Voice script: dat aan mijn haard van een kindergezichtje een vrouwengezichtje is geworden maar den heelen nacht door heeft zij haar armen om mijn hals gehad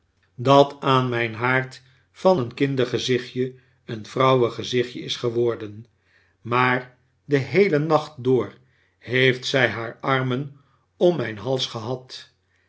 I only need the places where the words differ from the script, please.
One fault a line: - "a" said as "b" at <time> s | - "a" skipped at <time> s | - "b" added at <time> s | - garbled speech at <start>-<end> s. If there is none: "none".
none